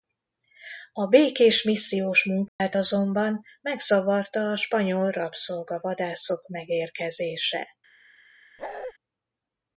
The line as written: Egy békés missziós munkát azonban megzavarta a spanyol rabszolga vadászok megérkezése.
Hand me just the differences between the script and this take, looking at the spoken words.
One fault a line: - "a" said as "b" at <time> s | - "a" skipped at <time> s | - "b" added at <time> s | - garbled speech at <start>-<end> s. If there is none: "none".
- "Egy" said as "A" at 0.9 s